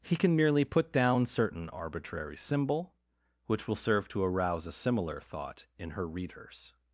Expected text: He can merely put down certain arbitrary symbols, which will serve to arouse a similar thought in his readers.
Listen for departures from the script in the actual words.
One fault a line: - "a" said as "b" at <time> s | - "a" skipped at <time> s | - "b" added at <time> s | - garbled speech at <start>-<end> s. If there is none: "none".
- "symbols" said as "symbol" at 2.4 s
- "his" said as "her" at 5.9 s